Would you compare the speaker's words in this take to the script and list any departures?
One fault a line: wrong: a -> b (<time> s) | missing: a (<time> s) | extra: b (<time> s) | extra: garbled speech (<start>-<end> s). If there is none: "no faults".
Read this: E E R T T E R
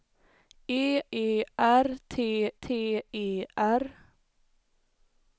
no faults